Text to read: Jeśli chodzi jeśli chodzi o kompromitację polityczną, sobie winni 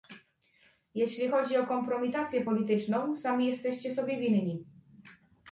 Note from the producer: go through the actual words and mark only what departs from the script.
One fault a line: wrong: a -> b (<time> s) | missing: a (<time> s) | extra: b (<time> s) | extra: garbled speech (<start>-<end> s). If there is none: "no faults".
missing: jeśli chodzi (1.6 s)
extra: sami jesteście (3.1 s)